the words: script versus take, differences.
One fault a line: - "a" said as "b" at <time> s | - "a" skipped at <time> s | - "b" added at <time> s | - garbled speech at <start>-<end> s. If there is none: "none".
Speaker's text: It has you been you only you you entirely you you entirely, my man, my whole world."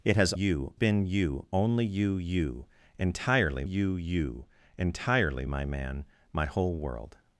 none